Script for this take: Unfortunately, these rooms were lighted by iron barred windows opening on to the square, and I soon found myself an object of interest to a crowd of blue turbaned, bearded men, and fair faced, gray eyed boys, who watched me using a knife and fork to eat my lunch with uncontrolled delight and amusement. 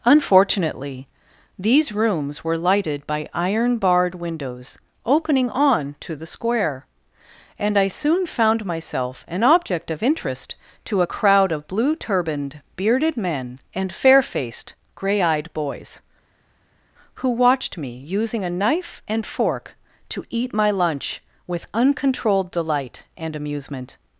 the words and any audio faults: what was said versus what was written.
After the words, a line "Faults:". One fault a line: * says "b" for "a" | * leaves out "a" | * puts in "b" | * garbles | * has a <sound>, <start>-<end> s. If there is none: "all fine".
Unfortunately, these rooms were lighted by iron barred windows opening on to the square, and I soon found myself an object of interest to a crowd of blue turbaned, bearded men, and fair faced, gray eyed boys, who watched me using a knife and fork to eat my lunch with uncontrolled delight and amusement.
Faults:
all fine